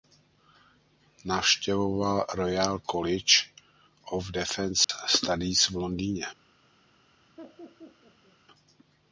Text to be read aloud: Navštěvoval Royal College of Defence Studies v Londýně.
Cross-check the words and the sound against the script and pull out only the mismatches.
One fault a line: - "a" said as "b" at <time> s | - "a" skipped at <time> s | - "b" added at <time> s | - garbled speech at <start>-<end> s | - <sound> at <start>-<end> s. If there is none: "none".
- dropout at 4.8-4.9 s
- laugh at 7.4-8.4 s